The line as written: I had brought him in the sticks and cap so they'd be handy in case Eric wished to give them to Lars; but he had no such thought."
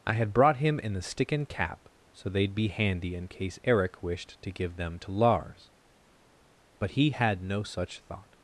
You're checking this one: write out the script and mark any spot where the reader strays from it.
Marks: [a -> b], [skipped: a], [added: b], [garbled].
I had brought him in the [sticks -> stick] and cap so they'd be handy in case Eric wished to give them to Lars; but he had no such thought."